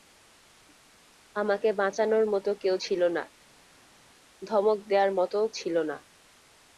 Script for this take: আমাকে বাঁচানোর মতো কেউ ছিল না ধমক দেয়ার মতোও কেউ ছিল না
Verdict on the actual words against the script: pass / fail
fail